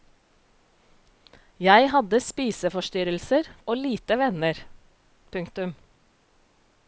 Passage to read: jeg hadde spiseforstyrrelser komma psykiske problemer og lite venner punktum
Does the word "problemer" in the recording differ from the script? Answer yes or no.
yes